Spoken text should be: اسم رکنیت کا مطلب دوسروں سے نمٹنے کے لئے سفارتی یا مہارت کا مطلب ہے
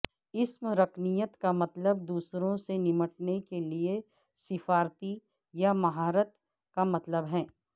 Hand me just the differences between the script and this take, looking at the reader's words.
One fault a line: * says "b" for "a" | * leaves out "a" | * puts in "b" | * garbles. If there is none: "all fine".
all fine